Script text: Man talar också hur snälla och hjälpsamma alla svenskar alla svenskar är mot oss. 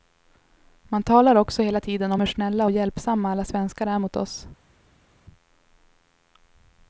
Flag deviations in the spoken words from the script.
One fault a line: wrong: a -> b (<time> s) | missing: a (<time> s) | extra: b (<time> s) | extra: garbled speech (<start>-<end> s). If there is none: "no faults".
extra: hela tiden om (1.6 s)
missing: alla svenskar (3.9 s)